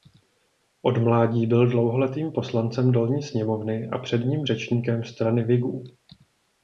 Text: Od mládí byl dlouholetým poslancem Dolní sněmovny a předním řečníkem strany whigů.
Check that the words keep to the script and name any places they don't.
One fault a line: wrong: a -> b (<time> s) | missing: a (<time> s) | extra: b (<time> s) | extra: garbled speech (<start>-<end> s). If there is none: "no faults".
no faults